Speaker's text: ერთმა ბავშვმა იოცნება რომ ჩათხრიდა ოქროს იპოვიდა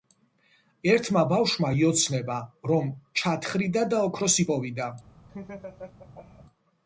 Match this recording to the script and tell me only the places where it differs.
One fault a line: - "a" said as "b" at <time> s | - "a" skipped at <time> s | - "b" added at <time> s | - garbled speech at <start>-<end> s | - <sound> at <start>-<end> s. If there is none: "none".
- "და" added at 3.9 s
- laugh at 5.3-6.5 s